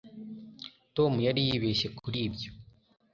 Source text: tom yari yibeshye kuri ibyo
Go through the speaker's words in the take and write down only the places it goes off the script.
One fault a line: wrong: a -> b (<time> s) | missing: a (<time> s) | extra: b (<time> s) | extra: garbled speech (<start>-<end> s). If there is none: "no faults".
no faults